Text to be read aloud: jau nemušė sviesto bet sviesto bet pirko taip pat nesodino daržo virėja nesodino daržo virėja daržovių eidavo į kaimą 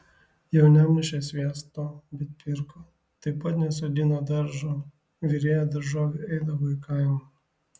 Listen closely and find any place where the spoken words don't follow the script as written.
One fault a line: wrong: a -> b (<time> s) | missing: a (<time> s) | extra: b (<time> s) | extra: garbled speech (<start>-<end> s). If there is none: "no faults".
missing: sviesto bet (2.3 s)
missing: nesodino daržo virėja (5.7 s)